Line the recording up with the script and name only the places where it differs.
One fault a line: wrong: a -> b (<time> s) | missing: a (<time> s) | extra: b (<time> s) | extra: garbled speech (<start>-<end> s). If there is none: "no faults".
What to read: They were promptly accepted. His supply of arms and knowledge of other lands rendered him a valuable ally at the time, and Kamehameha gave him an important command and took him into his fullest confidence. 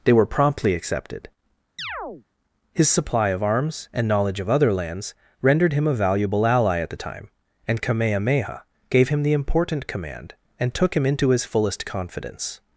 wrong: an -> the (9.2 s)